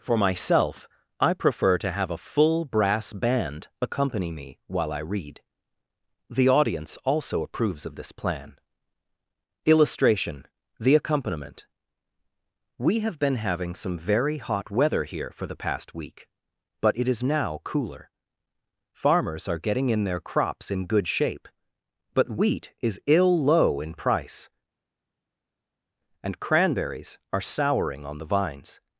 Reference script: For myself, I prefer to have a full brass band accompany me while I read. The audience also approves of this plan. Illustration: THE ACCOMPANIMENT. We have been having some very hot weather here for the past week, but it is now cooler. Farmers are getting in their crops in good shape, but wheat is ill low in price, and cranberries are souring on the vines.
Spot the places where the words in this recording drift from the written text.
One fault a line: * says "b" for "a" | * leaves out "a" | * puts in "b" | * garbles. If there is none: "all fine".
all fine